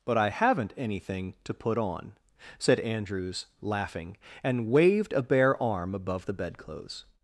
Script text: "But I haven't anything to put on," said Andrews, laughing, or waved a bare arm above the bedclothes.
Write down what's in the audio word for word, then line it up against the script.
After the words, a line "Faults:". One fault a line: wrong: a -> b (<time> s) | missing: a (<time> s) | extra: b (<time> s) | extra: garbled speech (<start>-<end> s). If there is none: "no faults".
"But I haven't anything to put on," said Andrews, laughing, and waved a bare arm above the bedclothes.
Faults:
wrong: or -> and (4.4 s)